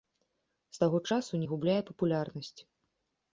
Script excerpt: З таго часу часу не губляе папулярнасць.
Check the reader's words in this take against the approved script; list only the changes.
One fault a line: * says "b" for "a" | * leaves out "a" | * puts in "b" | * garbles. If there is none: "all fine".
* leaves out "часу"